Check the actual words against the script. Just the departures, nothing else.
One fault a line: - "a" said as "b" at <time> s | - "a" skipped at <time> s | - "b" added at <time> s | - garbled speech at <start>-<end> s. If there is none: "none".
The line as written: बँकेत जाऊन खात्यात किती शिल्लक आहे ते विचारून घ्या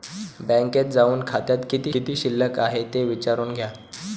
- "किती" added at 1.9 s